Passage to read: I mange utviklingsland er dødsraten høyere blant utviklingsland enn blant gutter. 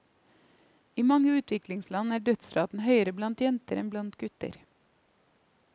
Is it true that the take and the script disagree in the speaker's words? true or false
true